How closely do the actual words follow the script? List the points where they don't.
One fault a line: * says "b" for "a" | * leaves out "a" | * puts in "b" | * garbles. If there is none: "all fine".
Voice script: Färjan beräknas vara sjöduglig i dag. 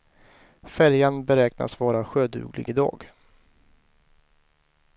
all fine